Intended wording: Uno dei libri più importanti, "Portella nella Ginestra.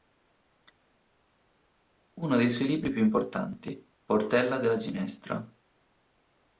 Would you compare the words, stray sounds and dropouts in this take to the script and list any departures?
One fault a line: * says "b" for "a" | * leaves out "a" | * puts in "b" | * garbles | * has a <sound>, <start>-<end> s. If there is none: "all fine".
* puts in "suoi"
* says "della" for "nella"